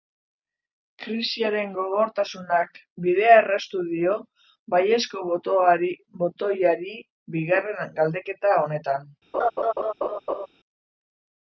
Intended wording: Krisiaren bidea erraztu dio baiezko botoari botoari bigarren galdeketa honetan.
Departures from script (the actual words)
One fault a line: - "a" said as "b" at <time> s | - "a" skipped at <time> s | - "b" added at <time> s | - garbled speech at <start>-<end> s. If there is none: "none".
- "gogortasunak" added at 1.8 s
- "botoari" skipped at 7.0 s